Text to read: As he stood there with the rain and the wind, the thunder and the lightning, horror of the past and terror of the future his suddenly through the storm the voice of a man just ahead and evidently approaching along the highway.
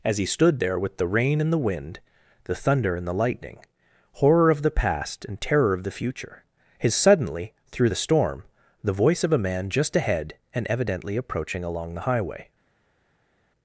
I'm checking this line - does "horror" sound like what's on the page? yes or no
yes